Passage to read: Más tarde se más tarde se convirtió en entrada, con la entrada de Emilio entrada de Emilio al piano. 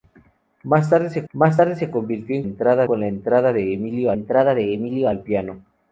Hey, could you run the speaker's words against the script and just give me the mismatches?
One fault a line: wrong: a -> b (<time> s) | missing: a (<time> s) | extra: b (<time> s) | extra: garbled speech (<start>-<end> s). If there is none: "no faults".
no faults